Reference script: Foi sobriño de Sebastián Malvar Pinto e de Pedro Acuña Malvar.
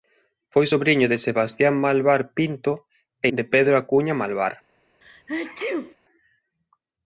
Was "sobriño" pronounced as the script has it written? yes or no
yes